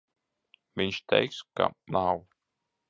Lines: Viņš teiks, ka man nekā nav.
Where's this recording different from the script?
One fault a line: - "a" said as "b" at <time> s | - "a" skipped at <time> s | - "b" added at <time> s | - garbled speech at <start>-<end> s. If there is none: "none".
- "man nekā" skipped at 1.7 s